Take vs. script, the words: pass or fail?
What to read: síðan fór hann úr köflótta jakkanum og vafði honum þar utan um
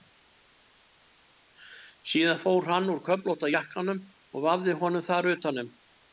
pass